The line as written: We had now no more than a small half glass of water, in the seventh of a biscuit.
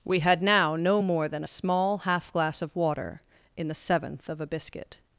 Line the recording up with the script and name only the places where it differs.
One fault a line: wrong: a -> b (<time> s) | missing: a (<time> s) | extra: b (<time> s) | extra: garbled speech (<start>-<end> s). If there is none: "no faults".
no faults